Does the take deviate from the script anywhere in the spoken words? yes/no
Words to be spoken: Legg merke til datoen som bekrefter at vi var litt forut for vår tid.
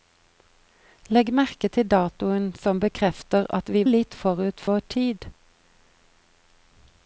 yes